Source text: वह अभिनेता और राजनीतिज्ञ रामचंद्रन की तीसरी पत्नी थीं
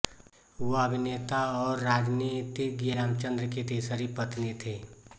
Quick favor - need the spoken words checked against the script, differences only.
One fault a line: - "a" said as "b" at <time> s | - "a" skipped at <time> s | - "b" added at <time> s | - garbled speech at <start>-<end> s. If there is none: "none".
none